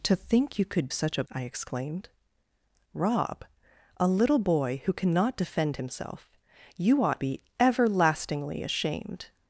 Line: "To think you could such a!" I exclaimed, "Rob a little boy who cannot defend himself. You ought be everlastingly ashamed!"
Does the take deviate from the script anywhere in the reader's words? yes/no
no